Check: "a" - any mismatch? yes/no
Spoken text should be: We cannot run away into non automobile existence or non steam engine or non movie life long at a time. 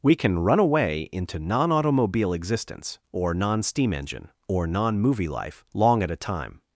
no